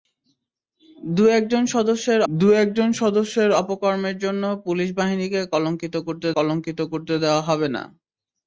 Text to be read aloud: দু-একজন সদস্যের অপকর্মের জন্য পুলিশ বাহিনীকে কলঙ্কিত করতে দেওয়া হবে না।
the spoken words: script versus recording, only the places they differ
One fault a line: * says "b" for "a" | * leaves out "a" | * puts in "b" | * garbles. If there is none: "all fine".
* puts in "দু-একজন সদস্যের"
* puts in "কলঙ্কিত করতে"